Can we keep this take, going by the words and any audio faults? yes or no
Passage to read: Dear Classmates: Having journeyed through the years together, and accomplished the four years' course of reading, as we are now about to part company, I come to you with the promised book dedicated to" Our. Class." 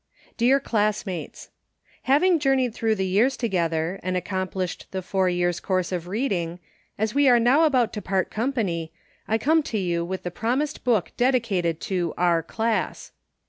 yes